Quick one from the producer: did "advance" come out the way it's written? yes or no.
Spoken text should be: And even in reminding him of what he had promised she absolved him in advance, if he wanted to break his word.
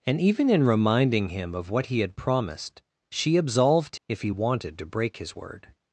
no